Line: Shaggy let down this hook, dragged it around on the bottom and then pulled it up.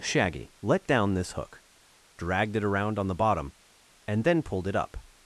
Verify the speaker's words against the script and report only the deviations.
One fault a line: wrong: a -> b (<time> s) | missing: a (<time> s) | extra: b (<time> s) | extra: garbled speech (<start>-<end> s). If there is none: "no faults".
no faults